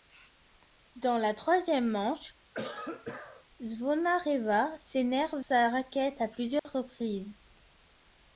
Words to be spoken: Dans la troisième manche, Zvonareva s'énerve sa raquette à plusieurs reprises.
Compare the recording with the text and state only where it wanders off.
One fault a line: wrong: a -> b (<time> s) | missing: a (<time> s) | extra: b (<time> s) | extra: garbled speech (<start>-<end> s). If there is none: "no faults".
no faults